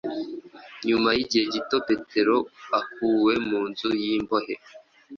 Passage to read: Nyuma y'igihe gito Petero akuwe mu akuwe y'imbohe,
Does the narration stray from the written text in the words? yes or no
yes